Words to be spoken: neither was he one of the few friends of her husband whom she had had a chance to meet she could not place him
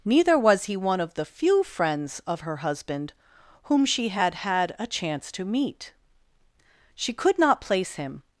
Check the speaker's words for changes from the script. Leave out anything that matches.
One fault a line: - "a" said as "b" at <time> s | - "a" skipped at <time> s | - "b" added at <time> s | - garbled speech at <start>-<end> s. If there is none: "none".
none